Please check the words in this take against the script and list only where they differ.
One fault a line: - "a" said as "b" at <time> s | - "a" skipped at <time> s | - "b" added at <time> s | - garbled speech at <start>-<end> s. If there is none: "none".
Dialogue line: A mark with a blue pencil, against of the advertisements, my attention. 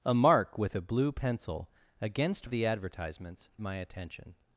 none